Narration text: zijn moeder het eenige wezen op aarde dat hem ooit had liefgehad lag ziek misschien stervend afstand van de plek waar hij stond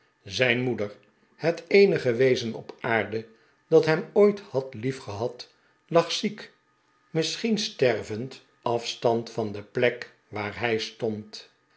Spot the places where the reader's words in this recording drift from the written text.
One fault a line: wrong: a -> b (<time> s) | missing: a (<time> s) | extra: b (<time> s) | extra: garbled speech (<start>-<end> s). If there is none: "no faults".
no faults